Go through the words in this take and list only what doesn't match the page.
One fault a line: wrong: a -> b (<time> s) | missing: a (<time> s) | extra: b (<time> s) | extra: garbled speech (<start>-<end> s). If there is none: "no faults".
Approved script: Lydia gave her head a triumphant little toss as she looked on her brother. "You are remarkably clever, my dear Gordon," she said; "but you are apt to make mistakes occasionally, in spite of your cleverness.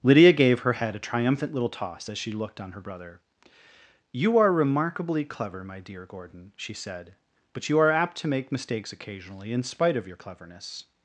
no faults